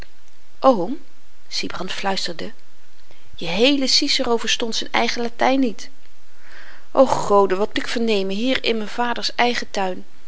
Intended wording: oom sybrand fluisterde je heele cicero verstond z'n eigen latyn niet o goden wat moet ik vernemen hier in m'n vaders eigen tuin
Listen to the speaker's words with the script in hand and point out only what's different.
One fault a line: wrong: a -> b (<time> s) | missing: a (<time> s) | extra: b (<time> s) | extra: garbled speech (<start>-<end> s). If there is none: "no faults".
missing: moet (7.8 s)